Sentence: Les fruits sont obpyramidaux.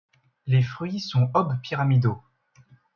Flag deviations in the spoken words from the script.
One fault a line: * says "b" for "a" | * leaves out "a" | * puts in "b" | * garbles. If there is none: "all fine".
all fine